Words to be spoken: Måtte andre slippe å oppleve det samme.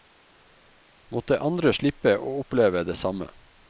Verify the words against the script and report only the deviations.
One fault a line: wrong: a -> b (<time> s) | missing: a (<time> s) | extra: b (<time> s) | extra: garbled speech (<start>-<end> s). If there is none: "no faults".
no faults